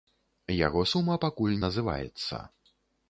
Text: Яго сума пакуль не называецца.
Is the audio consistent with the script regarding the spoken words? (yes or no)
no